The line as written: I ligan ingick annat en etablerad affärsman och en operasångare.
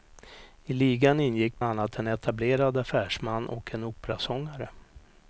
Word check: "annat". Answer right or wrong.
right